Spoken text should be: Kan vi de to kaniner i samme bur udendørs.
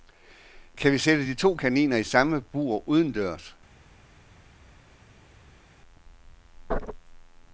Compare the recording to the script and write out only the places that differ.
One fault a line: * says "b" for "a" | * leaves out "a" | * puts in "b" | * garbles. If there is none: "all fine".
* puts in "sætte"